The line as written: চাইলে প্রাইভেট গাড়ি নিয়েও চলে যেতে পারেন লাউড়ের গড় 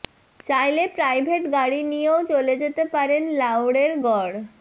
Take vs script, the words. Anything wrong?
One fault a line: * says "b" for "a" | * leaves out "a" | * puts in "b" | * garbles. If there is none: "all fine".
all fine